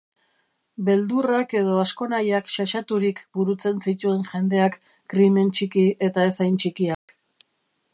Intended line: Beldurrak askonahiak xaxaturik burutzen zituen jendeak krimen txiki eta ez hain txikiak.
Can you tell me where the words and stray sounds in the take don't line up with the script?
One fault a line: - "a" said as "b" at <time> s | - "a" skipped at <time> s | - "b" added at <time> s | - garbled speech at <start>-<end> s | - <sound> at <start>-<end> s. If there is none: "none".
- "edo" added at 1.6 s
- dropout at 6.9-7.1 s